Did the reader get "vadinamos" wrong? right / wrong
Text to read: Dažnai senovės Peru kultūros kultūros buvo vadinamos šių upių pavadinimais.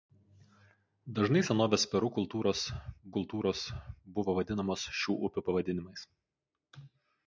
right